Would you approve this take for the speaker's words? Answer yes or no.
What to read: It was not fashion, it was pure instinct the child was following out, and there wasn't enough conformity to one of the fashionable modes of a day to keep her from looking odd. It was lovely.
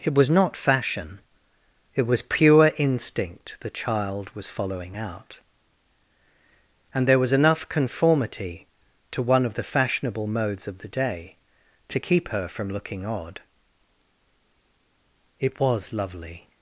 no